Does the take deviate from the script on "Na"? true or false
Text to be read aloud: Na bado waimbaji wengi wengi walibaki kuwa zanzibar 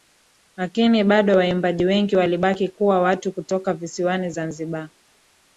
true